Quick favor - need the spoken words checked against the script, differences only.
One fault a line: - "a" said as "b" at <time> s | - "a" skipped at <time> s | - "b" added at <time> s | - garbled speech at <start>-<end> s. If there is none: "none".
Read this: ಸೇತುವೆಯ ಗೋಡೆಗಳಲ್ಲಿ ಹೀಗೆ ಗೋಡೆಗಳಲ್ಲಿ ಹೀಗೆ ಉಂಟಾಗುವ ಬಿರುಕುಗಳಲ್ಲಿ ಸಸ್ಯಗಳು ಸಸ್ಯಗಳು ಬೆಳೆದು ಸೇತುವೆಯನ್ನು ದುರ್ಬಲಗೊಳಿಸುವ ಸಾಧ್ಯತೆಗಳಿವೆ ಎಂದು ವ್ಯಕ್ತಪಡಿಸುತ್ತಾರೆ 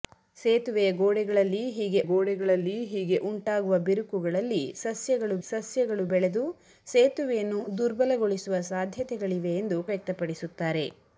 none